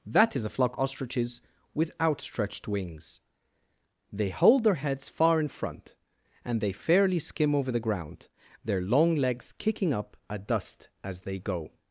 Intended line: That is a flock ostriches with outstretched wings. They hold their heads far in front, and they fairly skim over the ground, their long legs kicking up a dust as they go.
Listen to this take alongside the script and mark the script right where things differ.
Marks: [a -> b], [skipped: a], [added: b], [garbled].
That is a flock ostriches with outstretched wings. They hold their heads far in front, and they fairly skim over the ground, their long legs kicking up a dust as they go.